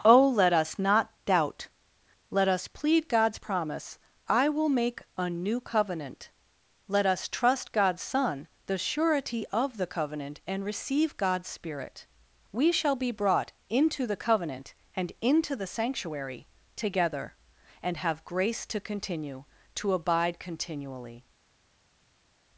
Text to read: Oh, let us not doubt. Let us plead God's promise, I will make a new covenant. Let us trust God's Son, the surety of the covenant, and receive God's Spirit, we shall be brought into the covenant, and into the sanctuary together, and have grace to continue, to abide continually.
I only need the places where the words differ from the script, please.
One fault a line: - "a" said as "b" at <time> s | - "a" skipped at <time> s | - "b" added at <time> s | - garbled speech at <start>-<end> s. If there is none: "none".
none